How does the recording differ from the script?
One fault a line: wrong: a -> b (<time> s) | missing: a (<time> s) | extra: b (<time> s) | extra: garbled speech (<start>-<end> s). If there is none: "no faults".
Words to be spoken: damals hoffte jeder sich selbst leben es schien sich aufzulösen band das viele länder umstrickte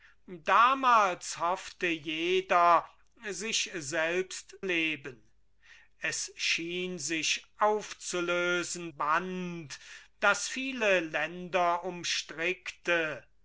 no faults